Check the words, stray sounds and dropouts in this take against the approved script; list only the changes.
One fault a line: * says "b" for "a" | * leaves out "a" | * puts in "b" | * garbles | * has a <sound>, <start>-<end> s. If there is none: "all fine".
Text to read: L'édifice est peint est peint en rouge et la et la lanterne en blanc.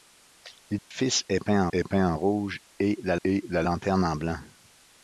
* has a dropout, 0.8-0.9 s